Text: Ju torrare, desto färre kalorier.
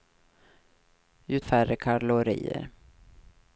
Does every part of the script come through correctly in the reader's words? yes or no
no